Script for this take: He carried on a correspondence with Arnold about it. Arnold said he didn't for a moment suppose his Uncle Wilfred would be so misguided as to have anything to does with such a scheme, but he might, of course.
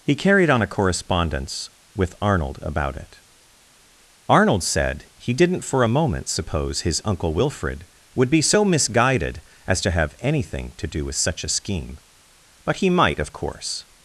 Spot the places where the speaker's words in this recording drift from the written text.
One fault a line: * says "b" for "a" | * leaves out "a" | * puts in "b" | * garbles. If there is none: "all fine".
* says "do" for "does"